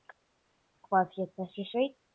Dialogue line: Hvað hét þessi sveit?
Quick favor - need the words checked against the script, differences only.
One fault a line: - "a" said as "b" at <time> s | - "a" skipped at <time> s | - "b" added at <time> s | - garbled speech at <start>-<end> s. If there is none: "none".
none